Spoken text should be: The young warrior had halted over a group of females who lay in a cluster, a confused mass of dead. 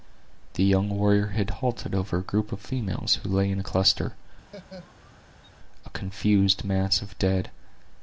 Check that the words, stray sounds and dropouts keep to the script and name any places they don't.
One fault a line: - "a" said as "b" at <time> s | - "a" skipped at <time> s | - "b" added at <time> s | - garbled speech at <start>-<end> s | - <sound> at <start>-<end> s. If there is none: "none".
- laugh at 4.5-5.5 s